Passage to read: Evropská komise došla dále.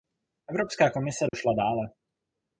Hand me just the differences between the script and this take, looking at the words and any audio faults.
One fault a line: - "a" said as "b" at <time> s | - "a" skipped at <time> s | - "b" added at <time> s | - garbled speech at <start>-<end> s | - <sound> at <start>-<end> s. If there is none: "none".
- dropout at 1.3-1.3 s